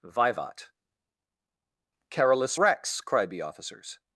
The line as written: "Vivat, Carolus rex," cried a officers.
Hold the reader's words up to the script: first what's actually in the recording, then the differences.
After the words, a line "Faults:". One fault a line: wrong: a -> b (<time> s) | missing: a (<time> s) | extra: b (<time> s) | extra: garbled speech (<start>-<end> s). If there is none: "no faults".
"Vivat, Carolus rex," cried the officers.
Faults:
wrong: a -> the (3.3 s)